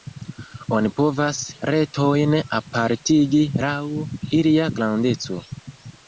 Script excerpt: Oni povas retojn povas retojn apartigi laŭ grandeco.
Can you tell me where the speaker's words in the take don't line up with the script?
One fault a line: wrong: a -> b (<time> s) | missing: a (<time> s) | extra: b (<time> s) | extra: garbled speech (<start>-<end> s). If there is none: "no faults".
missing: povas retojn (2.4 s)
extra: ilia (4.4 s)